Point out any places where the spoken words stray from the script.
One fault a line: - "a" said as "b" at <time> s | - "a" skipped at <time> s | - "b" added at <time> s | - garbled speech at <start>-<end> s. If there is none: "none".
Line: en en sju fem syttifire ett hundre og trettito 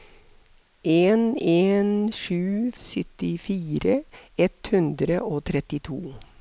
- "fem" skipped at 2.7 s